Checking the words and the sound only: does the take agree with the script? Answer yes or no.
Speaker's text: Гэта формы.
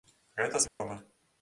no